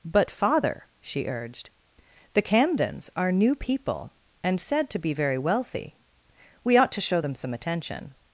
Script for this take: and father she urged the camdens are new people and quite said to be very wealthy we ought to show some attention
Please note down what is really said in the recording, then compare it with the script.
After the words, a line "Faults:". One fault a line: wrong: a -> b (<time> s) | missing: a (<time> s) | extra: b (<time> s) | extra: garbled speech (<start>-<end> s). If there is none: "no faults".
but father she urged the camdens are new people and said to be very wealthy we ought to show them some attention
Faults:
wrong: and -> but (0.0 s)
missing: quite (4.6 s)
extra: them (7.2 s)